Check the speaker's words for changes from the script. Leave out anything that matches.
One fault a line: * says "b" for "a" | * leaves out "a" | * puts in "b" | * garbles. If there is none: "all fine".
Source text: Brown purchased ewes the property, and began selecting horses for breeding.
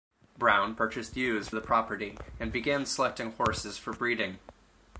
all fine